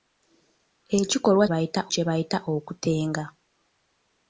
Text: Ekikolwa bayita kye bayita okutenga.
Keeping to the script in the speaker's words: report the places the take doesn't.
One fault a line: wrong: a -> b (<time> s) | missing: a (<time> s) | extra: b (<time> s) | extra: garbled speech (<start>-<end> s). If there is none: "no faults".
no faults